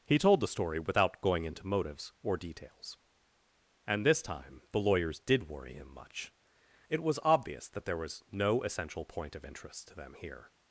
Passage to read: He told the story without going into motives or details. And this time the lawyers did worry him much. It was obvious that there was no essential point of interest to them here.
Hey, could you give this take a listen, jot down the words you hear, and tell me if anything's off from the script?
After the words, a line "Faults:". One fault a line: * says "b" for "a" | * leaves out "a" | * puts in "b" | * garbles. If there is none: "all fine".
He told the story without going into motives or details. And this time the lawyers did worry him much. It was obvious that there was no essential point of interest to them here.
Faults:
all fine